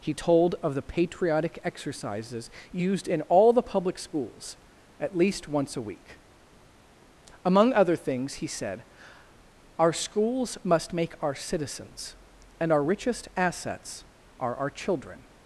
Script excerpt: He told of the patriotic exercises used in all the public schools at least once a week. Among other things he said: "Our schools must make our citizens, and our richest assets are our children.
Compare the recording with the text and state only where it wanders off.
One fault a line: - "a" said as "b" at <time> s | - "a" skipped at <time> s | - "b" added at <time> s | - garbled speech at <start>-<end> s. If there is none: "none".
none